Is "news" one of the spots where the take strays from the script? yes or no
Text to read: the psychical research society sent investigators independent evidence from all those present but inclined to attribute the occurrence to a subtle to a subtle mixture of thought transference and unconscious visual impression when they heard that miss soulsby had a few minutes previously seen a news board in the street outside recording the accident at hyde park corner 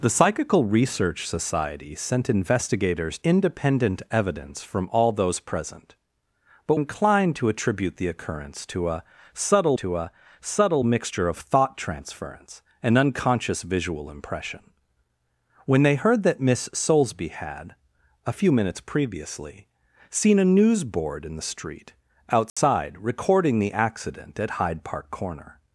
no